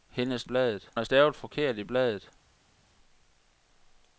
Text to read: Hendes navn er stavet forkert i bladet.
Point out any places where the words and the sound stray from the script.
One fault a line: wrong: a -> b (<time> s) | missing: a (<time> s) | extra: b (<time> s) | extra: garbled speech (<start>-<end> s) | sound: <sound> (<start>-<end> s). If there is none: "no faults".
wrong: navn -> bladet (0.4 s)